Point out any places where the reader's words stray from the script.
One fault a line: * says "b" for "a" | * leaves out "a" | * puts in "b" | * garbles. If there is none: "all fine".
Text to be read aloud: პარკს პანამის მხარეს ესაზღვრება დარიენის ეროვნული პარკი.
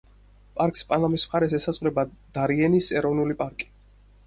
all fine